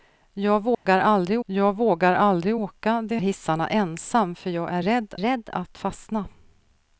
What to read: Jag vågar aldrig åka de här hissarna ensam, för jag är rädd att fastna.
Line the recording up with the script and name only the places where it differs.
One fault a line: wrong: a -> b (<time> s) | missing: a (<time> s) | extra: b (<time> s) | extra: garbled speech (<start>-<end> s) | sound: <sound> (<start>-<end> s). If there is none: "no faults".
sound: dropout (0.7-0.9 s)
extra: jag vågar aldrig (1.4 s)
missing: här (3.2 s)
extra: rädd (5.2 s)